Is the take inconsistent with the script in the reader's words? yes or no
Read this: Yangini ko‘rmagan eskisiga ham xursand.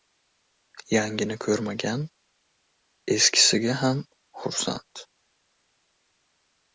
no